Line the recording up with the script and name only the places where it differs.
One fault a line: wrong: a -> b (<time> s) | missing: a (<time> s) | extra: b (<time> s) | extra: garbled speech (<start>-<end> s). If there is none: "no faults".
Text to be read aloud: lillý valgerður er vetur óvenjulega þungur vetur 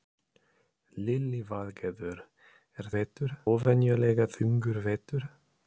no faults